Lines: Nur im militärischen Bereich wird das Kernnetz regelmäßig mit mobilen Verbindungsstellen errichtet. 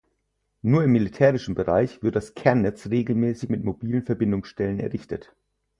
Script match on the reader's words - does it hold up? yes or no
yes